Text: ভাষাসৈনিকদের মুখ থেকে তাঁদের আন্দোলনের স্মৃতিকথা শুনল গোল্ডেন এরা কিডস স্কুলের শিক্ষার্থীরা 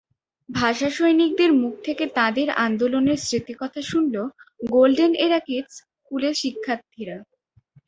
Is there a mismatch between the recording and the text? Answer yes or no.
no